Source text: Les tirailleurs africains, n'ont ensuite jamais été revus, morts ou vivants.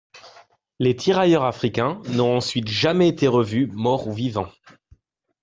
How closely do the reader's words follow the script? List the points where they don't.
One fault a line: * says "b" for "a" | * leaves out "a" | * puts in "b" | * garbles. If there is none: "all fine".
all fine